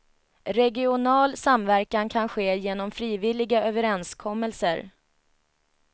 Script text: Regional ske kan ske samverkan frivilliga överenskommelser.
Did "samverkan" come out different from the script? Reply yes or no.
yes